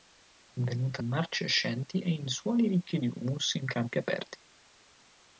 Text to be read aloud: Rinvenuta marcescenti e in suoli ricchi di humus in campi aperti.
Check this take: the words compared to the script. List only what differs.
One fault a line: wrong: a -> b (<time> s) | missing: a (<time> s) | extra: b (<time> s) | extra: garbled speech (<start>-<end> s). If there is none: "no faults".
no faults